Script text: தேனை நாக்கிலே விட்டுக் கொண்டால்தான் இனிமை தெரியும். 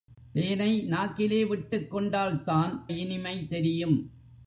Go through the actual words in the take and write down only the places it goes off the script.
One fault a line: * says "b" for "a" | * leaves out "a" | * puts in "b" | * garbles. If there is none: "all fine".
all fine